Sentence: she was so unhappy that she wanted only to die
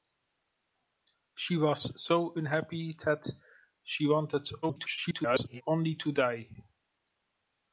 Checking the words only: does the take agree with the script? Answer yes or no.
no